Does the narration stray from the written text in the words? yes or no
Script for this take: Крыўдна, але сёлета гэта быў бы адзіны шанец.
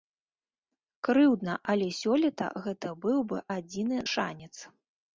no